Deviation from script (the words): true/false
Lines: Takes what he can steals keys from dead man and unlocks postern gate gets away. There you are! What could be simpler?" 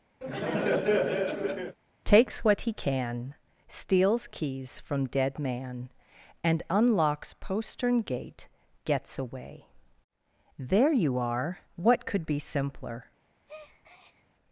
false